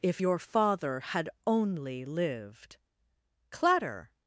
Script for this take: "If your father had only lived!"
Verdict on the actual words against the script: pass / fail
fail